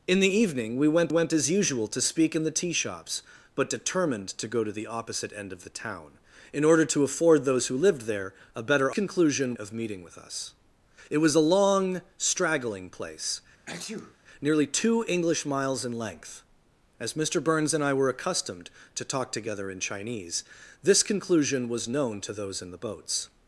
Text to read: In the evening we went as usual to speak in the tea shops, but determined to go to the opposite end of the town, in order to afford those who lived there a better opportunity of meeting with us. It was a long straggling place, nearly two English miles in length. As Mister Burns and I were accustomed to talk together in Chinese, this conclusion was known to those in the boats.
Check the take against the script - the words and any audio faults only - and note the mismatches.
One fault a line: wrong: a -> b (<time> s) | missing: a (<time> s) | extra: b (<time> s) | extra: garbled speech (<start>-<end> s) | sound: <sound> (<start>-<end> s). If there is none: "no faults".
extra: went (1.1 s)
wrong: opportunity -> conclusion (8.9 s)
sound: sneeze (13.7-14.2 s)